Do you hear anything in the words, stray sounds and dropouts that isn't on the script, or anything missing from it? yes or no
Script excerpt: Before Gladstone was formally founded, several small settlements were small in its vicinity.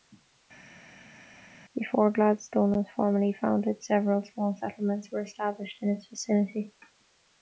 yes